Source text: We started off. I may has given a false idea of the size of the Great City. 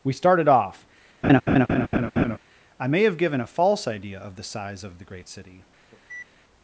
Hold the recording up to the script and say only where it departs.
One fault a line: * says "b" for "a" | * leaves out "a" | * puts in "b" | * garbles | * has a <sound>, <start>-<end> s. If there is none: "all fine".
* has a laugh, 1.2-2.4 s
* says "have" for "has"
* has a cough, 5.9-6.3 s